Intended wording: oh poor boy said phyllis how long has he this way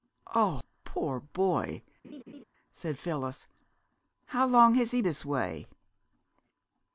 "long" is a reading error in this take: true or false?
false